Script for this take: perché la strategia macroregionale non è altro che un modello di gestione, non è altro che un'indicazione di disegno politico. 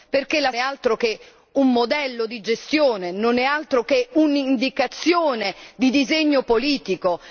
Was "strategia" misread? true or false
true